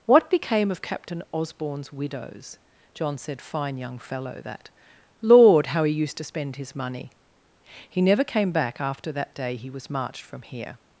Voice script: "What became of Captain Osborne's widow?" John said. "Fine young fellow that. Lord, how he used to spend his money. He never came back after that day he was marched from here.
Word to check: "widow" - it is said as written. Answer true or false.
false